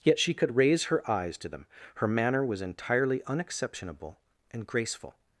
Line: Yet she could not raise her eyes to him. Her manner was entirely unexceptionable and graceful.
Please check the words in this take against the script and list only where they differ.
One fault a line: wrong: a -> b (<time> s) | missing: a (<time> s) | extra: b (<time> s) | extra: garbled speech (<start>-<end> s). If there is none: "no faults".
missing: not (0.6 s)
wrong: him -> them (1.5 s)